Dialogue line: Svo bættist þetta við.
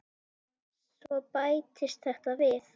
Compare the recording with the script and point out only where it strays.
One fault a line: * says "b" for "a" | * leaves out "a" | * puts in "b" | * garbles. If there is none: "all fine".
all fine